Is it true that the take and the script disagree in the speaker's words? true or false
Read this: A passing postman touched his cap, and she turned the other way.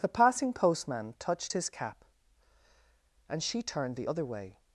true